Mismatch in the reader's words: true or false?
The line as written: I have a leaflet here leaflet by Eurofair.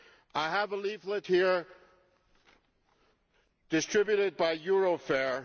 true